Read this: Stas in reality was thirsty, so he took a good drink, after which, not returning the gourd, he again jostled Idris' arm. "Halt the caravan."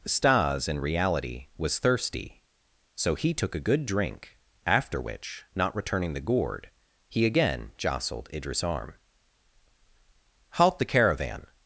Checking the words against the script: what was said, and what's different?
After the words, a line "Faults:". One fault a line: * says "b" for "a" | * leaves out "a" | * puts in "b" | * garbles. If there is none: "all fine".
Stas in reality was thirsty, so he took a good drink, after which, not returning the gourd, he again jostled Idris' arm. "Halt the caravan."
Faults:
all fine